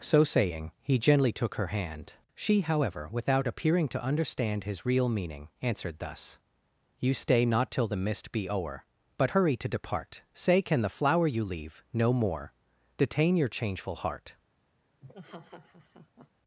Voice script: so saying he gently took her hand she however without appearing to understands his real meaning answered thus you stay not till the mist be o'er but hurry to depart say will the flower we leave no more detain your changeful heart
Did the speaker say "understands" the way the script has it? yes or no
no